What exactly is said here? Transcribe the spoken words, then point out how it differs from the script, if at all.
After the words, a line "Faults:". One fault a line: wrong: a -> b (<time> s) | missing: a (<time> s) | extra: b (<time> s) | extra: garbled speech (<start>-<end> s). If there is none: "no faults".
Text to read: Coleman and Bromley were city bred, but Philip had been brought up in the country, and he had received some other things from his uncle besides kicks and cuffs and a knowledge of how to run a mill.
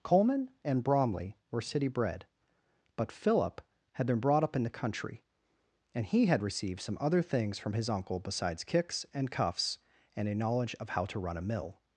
Coleman and Bromley were city bred, but Philip had been brought up in the country, and he had received some other things from his uncle besides kicks and cuffs and a knowledge of how to run a mill.
Faults:
no faults